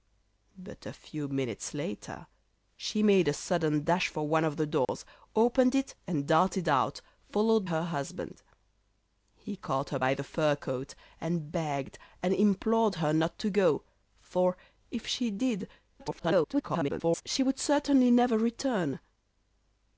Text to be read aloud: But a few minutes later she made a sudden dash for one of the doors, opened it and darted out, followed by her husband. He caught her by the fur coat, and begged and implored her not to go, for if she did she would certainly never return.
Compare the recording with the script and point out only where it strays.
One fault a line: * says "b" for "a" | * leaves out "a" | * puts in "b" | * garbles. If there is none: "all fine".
* leaves out "by"
* garbles